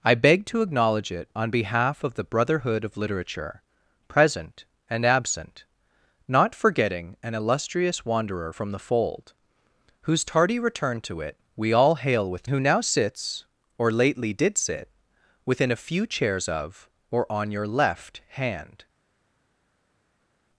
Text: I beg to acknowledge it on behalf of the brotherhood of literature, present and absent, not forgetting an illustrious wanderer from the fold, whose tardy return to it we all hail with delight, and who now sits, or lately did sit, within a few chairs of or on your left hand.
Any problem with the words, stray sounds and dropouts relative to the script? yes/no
yes